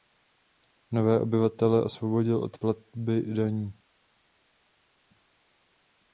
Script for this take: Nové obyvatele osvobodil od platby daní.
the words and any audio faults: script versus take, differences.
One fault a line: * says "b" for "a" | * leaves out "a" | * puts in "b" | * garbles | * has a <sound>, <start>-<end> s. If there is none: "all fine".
all fine